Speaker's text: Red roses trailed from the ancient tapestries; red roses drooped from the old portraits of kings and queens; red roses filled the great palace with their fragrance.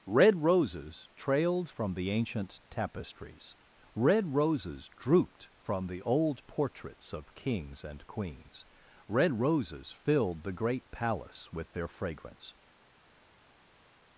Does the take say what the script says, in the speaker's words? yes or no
yes